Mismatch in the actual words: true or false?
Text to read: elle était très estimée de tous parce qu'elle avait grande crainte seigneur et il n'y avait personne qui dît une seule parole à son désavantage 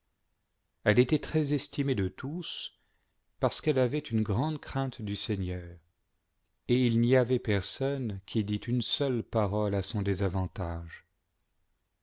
true